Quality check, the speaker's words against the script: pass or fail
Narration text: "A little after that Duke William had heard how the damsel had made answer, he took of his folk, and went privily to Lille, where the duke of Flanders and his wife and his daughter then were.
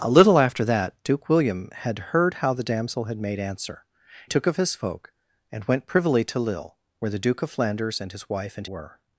fail